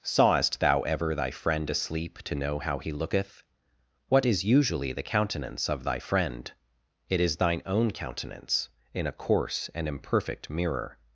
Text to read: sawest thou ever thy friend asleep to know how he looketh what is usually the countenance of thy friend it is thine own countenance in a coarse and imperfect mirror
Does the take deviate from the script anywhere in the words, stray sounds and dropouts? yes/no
no